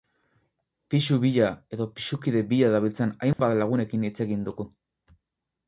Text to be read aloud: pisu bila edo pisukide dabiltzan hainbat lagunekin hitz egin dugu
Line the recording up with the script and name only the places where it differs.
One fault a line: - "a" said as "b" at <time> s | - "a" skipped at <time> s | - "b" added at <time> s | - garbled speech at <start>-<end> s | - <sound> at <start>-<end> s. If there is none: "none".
- "bila" added at 2.5 s
- dropout at 3.3-3.4 s